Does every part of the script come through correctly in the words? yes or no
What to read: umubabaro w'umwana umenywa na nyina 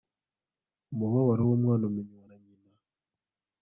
yes